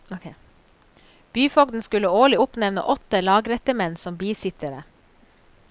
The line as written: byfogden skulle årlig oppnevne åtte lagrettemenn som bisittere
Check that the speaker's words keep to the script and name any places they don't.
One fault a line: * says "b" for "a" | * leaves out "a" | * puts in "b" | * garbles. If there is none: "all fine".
all fine